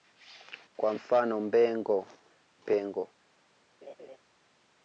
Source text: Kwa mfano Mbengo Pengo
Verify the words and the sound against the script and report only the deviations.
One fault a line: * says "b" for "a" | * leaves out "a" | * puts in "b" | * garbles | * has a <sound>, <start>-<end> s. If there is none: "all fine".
* has a laugh, 3.8-4.2 s